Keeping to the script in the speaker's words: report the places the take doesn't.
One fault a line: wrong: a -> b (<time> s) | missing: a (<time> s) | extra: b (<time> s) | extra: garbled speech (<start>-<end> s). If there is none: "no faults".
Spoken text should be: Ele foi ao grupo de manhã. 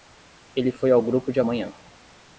no faults